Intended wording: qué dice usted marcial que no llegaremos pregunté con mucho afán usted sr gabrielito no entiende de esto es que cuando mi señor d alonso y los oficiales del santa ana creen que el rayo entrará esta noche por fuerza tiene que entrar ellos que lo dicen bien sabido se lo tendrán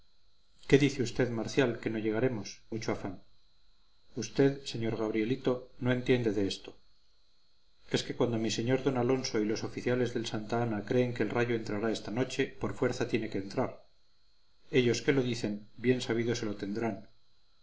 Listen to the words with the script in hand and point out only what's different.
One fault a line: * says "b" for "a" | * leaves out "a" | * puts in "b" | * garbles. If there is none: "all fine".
* leaves out "pregunté con"